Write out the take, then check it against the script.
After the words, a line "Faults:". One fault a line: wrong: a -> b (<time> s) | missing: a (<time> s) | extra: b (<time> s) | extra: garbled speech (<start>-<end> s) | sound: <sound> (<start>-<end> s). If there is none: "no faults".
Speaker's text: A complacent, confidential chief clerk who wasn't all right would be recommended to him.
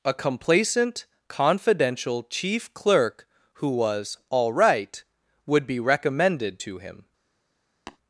A complacent, confidential chief clerk who was all right would be recommended to him.
Faults:
wrong: wasn't -> was (3.7 s)
sound: tap (7.9-8.0 s)